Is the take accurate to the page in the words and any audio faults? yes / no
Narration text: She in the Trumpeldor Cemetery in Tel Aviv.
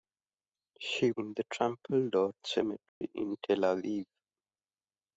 no